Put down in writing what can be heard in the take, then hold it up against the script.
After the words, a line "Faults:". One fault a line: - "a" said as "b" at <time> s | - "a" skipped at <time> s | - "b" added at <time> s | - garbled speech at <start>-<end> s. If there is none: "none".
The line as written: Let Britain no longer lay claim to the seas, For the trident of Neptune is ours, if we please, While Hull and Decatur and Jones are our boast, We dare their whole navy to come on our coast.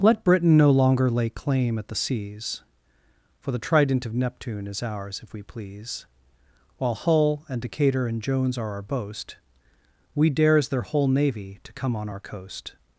Let Britain no longer lay claim at the seas, For the trident of Neptune is ours, if we please, While Hull and Decatur and Jones are our boast, We dares their whole navy to come on our coast.
Faults:
- "to" said as "at" at 1.8 s
- "dare" said as "dares" at 10.3 s